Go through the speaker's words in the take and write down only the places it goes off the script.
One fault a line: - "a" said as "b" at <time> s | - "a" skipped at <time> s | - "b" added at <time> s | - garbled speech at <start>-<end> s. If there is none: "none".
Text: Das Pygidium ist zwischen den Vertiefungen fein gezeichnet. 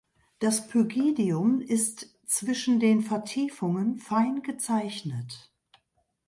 none